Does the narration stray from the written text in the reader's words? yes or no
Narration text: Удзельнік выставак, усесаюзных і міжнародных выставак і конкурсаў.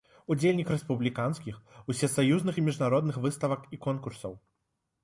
yes